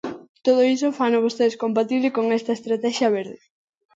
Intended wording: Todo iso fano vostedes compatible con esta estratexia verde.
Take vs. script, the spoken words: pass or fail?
pass